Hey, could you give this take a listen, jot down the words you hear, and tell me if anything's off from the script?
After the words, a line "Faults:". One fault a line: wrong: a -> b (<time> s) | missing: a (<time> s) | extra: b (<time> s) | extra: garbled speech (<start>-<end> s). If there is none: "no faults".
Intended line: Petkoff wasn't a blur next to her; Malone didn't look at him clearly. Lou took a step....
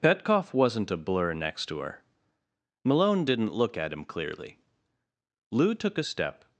Petkoff wasn't a blur next to her; Malone didn't look at him clearly. Lou took a step....
Faults:
no faults